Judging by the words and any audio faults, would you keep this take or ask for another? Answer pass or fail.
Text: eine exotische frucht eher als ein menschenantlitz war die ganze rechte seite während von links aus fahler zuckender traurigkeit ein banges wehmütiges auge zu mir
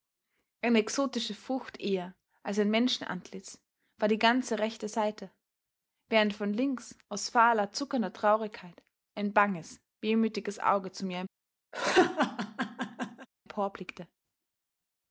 fail